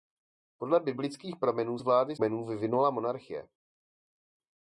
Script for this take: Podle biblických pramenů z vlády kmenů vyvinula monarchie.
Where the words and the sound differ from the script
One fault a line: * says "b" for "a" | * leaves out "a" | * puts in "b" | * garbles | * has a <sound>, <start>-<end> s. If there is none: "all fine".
all fine